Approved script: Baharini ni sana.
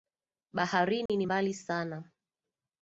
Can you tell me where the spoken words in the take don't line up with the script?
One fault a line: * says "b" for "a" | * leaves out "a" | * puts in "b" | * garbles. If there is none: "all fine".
* puts in "mbali"